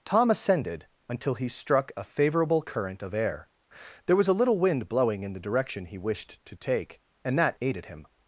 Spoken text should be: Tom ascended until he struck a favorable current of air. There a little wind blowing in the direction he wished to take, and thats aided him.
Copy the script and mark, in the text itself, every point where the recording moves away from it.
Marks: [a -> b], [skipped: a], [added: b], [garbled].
Tom ascended until he struck a favorable current of air. There [added: was] a little wind blowing in the direction he wished to take, and [thats -> that] aided him.